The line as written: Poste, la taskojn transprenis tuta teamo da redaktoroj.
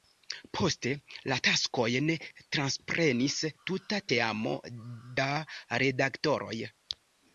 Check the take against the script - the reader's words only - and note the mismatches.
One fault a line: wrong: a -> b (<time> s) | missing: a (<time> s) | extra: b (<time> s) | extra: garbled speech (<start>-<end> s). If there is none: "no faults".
no faults